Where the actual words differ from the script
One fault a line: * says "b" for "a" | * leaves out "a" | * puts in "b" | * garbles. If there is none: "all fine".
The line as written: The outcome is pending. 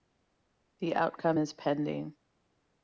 all fine